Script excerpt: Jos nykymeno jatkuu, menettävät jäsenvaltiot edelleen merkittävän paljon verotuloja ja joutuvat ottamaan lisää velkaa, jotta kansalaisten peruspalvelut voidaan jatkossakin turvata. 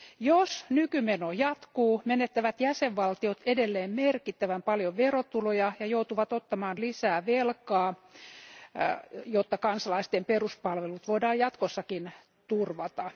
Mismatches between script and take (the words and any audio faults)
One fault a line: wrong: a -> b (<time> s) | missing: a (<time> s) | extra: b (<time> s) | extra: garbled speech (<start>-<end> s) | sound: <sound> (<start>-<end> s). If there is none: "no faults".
no faults